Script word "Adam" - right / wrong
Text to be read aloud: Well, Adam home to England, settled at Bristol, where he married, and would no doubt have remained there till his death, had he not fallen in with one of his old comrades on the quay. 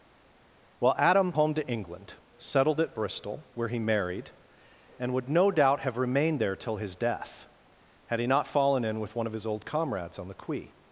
right